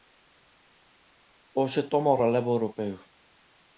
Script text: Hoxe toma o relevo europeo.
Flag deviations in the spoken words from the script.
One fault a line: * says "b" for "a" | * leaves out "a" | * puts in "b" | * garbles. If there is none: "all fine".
all fine